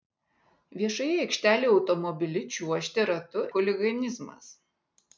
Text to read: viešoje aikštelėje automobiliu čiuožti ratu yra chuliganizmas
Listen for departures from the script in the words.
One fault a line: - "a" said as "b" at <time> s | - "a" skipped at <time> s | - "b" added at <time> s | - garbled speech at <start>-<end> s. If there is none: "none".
- "yra" skipped at 3.5 s